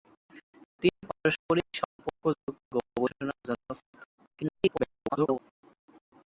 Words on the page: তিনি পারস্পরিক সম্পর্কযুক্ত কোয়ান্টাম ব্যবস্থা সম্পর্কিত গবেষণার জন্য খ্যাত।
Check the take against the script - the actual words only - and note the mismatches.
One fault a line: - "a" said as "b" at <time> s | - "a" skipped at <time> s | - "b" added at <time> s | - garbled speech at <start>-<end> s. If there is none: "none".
- "কোয়ান্টাম ব্যবস্থা সম্পর্কিত" skipped at 2.5 s
- garbled speech at 4.2-5.4 s